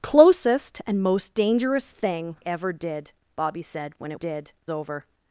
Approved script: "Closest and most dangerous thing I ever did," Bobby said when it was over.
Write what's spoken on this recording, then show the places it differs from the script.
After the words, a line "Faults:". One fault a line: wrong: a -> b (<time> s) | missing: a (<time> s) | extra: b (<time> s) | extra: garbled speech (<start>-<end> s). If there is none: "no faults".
"Closest and most dangerous thing ever did," Bobby said when it did over.
Faults:
missing: I (2.4 s)
wrong: was -> did (4.1 s)